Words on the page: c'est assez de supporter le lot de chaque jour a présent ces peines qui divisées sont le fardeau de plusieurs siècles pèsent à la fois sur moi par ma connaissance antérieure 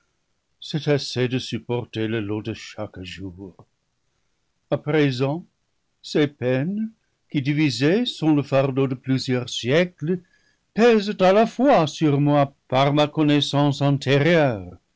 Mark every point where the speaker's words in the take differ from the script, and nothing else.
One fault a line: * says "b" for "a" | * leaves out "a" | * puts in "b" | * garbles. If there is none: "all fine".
all fine